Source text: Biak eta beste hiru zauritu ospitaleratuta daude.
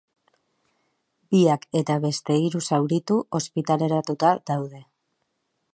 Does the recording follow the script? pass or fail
pass